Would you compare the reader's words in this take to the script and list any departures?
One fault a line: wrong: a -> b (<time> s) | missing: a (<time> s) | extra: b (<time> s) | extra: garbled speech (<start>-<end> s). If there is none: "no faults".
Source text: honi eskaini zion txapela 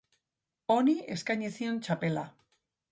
no faults